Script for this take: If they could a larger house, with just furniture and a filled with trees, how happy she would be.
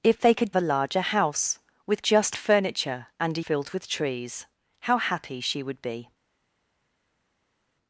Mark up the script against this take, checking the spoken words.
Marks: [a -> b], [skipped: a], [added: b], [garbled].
If they could a larger house, with just furniture and a filled with trees, how happy she would be.